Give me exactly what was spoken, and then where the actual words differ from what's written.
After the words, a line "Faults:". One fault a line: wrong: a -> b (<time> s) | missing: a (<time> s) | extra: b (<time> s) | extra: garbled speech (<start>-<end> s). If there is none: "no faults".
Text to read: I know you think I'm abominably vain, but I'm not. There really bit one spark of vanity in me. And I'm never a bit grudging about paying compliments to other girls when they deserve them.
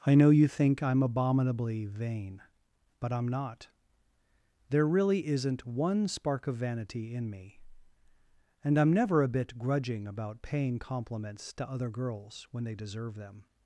I know you think I'm abominably vain, but I'm not. There really isn't one spark of vanity in me. And I'm never a bit grudging about paying compliments to other girls when they deserve them.
Faults:
wrong: bit -> isn't (5.3 s)